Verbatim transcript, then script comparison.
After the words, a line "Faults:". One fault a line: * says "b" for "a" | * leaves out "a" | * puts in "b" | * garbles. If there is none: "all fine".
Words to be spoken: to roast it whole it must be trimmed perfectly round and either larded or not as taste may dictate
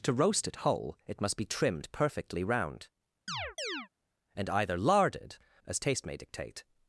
to roast it whole it must be trimmed perfectly round and either larded as taste may dictate
Faults:
* leaves out "or not"